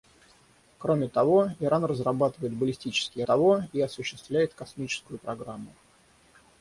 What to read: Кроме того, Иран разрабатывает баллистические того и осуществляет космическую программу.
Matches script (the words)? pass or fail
pass